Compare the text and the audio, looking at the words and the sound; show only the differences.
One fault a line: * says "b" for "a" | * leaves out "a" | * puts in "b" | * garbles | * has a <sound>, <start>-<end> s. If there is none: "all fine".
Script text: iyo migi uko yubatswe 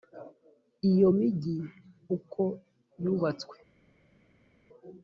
all fine